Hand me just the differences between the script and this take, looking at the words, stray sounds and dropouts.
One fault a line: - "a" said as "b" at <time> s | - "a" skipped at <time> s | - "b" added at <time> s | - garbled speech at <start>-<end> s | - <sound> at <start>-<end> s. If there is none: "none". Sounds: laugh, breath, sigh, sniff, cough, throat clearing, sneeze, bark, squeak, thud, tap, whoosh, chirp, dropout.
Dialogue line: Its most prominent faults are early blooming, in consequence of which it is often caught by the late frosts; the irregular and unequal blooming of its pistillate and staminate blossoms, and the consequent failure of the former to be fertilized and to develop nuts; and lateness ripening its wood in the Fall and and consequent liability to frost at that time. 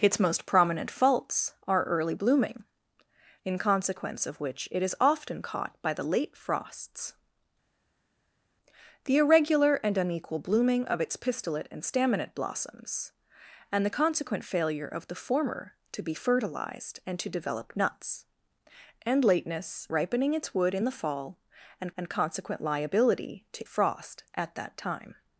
none